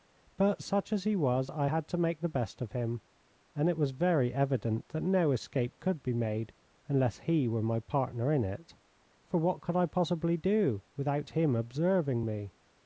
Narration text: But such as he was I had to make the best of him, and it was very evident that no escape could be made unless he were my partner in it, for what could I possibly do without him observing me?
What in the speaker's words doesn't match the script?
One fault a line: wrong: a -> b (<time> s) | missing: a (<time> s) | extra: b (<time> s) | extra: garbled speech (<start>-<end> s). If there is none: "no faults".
no faults